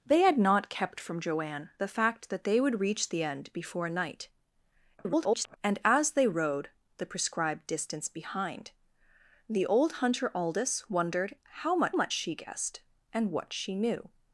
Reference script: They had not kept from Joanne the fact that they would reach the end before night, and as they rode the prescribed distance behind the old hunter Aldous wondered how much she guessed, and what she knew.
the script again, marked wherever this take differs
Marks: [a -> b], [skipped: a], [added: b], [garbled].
They had not kept from Joanne the fact that they would reach the end before night, [garbled] and as they rode the prescribed distance behind the old hunter Aldous wondered how much [added: much] she guessed, and what she knew.